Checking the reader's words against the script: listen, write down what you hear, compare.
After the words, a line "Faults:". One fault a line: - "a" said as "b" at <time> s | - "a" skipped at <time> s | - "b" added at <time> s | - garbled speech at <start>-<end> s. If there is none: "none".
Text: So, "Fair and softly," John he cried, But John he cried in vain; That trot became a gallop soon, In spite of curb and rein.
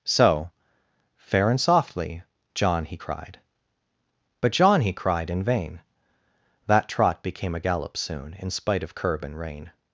So, "Fair and softly," John he cried, But John he cried in vain; That trot became a gallop soon, In spite of curb and rein.
Faults:
none